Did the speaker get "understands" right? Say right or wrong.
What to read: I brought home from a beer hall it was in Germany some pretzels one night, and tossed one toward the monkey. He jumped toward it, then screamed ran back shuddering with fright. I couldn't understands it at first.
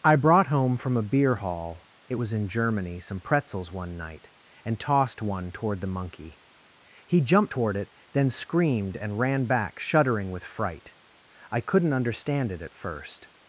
wrong